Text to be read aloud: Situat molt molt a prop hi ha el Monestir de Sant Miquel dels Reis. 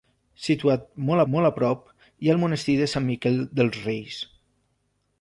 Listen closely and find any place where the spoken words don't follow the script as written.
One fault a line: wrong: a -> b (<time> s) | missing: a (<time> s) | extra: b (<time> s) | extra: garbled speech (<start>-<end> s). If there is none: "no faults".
no faults